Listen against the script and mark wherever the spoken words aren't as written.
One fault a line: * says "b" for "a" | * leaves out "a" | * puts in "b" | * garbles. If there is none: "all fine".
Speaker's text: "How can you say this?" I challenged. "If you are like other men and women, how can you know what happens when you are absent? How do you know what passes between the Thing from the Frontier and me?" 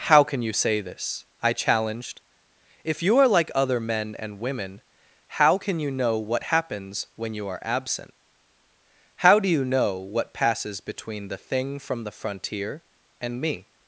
all fine